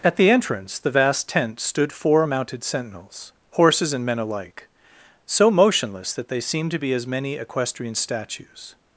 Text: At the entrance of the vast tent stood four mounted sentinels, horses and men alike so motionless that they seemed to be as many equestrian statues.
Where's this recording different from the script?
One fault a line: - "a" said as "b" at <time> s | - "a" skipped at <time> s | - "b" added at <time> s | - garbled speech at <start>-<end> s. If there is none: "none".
- "of" skipped at 0.8 s